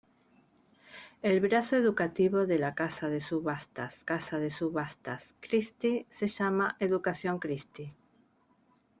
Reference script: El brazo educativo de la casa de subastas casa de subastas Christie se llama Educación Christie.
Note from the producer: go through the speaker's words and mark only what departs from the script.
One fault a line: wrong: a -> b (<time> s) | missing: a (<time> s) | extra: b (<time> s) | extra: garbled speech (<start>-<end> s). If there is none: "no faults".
no faults